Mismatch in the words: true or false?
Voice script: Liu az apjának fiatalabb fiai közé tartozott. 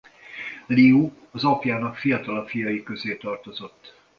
false